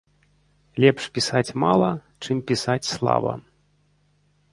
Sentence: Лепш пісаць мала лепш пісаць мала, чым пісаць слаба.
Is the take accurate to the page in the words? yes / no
no